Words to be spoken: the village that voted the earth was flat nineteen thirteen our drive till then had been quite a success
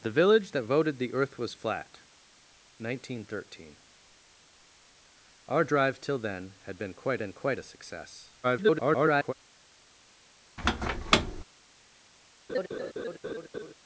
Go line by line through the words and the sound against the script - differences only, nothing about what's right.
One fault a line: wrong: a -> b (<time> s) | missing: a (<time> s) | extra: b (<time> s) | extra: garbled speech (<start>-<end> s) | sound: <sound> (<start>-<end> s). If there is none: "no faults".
extra: been quite (7.2 s)
extra: garbled speech (8.4-9.3 s)
sound: squeak (10.6-11.4 s)
sound: laugh (12.5-13.7 s)